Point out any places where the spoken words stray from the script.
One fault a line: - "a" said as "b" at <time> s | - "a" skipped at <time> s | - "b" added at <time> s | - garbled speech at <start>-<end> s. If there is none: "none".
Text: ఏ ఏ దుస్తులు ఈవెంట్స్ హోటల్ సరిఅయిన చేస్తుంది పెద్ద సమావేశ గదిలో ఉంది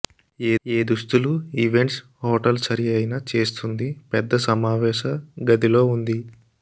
none